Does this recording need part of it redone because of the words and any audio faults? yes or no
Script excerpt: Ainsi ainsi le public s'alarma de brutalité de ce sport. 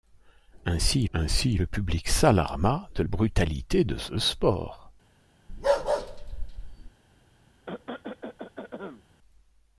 yes